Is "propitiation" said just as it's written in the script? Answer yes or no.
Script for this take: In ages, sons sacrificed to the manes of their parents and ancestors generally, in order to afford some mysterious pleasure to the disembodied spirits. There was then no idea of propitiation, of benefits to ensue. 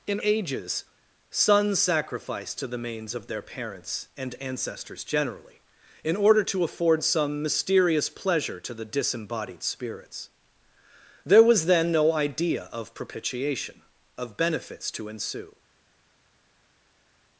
yes